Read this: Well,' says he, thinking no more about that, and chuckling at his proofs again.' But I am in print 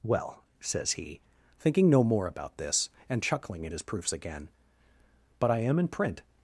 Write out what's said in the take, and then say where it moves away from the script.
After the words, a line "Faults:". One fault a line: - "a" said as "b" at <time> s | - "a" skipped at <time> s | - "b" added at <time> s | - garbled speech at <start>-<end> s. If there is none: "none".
Well,' says he, thinking no more about this, and chuckling at his proofs again.' But I am in print
Faults:
- "that" said as "this" at 2.6 s